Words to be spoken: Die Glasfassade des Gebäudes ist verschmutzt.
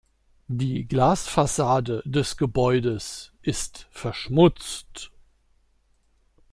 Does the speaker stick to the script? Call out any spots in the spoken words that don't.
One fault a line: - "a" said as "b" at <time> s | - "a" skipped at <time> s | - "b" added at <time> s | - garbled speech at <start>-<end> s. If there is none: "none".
none